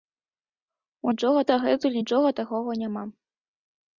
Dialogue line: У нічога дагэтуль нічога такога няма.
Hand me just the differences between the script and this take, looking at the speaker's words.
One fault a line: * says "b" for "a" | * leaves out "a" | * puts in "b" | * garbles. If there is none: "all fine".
all fine